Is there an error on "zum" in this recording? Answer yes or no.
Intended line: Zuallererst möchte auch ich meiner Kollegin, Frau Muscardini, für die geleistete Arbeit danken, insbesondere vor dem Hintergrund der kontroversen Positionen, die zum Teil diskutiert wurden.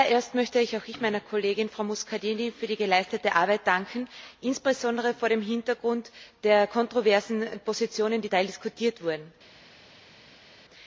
yes